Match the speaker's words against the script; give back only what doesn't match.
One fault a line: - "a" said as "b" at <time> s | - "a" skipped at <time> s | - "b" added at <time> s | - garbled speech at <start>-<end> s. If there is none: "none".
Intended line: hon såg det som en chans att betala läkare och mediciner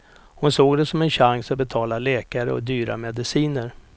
- "dyra" added at 2.6 s